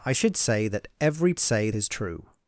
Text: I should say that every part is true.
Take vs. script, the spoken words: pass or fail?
fail